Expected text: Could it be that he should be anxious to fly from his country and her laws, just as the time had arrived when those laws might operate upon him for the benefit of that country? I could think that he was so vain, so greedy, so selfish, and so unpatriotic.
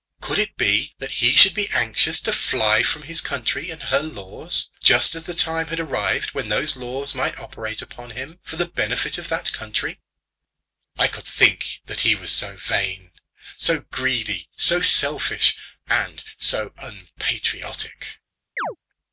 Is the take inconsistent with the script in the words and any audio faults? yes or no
yes